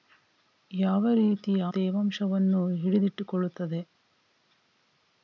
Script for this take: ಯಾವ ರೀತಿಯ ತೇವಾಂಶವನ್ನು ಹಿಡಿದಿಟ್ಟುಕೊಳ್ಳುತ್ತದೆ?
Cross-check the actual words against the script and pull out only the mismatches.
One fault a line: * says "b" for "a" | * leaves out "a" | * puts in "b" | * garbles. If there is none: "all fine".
all fine